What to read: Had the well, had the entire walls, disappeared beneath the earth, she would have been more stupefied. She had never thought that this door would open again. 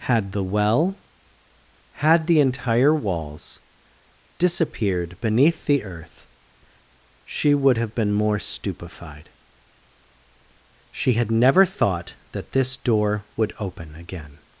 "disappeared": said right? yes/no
yes